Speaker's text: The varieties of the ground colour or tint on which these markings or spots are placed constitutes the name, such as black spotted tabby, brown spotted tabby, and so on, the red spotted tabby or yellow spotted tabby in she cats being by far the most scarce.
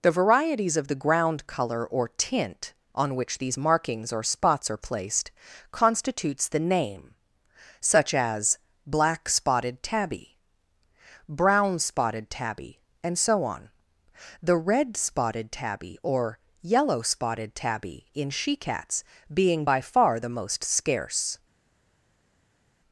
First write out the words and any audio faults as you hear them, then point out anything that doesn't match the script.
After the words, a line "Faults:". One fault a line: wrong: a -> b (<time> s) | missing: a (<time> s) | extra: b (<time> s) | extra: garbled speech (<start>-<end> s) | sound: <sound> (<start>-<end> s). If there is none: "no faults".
The varieties of the ground colour or tint on which these markings or spots are placed constitutes the name, such as black spotted tabby, brown spotted tabby, and so on, the red spotted tabby or yellow spotted tabby in she cats being by far the most scarce.
Faults:
no faults